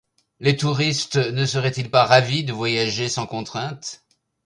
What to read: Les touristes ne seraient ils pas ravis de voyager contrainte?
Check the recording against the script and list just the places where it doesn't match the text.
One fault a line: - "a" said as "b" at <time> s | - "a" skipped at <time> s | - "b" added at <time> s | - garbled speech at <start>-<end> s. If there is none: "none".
- "sans" added at 3.1 s